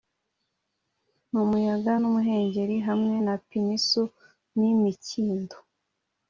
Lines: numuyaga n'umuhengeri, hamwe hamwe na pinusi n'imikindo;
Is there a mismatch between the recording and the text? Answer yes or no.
yes